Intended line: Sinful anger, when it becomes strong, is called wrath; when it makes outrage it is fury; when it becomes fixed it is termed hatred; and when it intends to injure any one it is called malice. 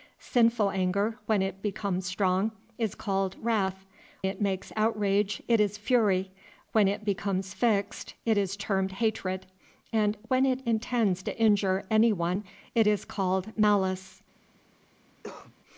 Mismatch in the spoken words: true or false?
true